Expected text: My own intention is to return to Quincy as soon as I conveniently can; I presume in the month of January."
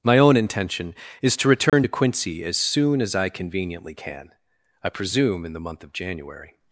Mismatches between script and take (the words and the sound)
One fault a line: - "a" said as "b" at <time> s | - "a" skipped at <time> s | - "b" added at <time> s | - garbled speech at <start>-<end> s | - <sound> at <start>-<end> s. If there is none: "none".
- dropout at 1.7-1.7 s